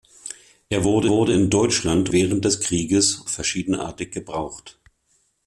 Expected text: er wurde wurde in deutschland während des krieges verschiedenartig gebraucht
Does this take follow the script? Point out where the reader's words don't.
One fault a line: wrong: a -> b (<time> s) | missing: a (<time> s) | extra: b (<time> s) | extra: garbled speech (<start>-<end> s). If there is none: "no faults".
no faults